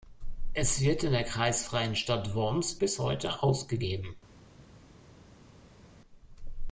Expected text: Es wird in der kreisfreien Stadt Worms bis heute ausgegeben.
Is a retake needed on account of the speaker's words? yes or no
no